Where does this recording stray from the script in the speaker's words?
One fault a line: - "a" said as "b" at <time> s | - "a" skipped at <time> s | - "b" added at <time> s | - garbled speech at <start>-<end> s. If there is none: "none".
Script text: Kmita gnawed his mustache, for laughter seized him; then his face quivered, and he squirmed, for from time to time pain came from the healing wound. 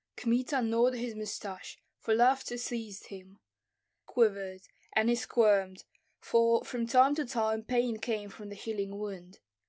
- "then his face" skipped at 3.4 s